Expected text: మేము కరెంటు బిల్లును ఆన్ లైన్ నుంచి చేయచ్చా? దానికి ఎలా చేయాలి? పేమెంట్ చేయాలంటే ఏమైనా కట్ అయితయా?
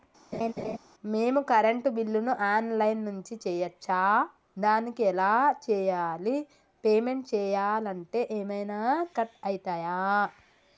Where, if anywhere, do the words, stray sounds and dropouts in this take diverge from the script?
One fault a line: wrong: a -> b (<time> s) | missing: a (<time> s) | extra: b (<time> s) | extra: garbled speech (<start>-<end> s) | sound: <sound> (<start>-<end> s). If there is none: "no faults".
sound: laugh (0.3-0.8 s)